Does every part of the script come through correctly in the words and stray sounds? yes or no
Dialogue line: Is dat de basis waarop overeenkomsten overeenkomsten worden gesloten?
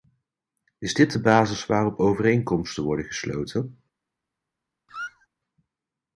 no